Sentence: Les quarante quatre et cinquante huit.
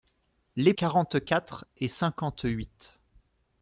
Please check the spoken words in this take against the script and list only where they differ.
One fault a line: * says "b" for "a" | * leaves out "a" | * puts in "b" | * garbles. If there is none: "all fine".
all fine